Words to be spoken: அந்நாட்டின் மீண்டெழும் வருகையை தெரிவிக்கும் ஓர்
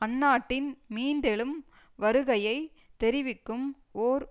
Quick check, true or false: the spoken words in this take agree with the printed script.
true